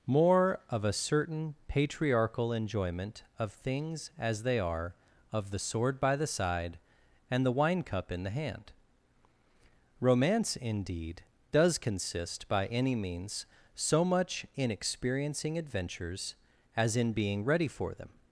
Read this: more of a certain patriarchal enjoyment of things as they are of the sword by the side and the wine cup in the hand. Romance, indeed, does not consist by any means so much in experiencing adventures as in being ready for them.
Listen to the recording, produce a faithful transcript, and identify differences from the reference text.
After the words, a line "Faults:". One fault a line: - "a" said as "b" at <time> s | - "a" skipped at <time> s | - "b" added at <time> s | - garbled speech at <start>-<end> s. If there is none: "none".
more of a certain patriarchal enjoyment of things as they are of the sword by the side and the wine cup in the hand. Romance, indeed, does consist by any means so much in experiencing adventures as in being ready for them.
Faults:
- "not" skipped at 11.8 s